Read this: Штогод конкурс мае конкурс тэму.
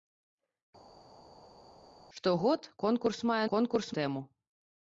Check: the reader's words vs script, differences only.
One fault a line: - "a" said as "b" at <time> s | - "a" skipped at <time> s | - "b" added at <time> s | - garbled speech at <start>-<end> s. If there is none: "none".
none